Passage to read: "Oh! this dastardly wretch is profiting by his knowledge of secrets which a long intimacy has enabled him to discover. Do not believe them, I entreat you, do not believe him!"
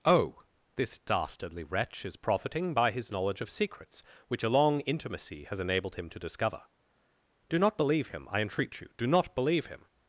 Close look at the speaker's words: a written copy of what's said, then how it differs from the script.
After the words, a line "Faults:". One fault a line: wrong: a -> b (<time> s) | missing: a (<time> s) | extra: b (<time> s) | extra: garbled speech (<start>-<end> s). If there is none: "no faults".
"Oh! this dastardly wretch is profiting by his knowledge of secrets which a long intimacy has enabled him to discover. Do not believe him, I entreat you, do not believe him!"
Faults:
wrong: them -> him (8.1 s)